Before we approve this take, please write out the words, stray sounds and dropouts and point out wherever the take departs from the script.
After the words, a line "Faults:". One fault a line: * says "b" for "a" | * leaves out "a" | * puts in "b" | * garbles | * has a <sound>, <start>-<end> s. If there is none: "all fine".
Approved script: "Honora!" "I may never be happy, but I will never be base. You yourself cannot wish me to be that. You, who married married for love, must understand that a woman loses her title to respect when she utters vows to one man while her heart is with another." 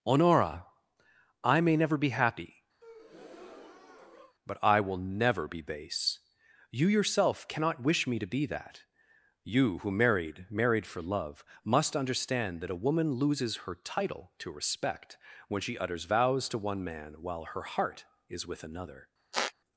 "Honora!" "I may never be happy, but I will never be base. You yourself cannot wish me to be that. You, who married married for love, must understand that a woman loses her title to respect when she utters vows to one man while her heart is with another."
Faults:
* has a breath, 2.8-4.4 s
* has a squeak, 19.3-19.5 s